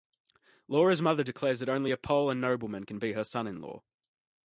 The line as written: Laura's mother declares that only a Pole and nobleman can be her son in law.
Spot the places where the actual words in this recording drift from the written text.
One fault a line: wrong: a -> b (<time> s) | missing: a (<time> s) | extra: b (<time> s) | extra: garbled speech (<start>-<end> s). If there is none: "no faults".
no faults